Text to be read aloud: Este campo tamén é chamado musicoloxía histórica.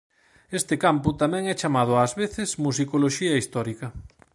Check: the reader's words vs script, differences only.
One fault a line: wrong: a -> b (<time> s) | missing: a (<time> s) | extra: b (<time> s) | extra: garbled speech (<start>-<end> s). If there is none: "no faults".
extra: ás veces (2.0 s)